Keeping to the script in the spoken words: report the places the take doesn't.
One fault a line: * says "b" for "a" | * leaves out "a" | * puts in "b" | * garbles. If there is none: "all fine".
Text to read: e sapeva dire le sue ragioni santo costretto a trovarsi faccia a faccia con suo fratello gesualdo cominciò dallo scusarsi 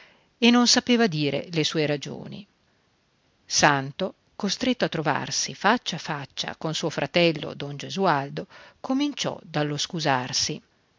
* puts in "non"
* puts in "don"